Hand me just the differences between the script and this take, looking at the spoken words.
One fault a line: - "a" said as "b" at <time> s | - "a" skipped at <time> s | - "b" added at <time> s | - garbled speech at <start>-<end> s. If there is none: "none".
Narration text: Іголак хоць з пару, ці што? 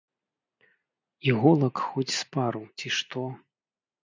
none